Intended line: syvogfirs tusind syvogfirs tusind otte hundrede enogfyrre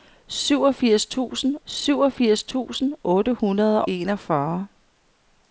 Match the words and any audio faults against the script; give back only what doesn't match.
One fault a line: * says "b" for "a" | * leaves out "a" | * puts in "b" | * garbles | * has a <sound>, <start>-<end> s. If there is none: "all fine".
all fine